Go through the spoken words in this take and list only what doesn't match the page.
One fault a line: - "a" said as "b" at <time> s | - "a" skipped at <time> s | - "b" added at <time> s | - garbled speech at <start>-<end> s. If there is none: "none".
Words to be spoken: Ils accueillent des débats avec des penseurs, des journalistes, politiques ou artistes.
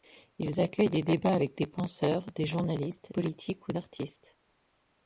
none